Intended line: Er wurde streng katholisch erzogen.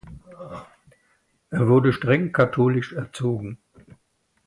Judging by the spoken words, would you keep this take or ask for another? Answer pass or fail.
pass